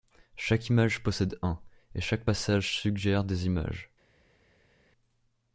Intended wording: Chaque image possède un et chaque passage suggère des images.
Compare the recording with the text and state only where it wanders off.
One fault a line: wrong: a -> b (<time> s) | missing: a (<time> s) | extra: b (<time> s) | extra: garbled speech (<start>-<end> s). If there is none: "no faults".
no faults